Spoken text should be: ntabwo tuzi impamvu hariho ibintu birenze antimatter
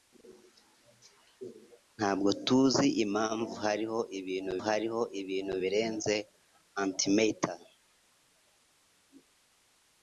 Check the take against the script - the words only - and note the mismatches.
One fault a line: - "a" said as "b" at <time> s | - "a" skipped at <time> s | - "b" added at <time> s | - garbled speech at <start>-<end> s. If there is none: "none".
- "hariho ibintu" added at 4.7 s